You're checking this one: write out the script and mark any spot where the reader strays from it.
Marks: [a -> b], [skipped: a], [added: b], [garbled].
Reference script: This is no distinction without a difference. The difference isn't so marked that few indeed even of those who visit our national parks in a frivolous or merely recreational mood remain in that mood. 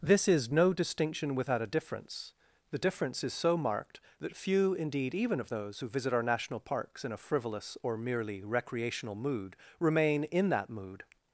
This is no distinction without a difference. The difference [isn't -> is] so marked that few indeed even of those who visit our national parks in a frivolous or merely recreational mood remain in that mood.